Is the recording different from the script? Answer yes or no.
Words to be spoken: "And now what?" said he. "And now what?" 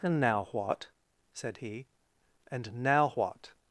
no